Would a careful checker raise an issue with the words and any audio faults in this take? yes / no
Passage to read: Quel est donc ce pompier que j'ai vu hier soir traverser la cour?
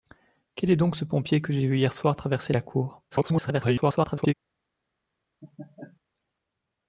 yes